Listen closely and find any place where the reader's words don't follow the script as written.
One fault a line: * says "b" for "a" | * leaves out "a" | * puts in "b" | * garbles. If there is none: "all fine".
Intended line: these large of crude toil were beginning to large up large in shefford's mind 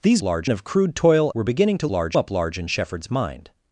all fine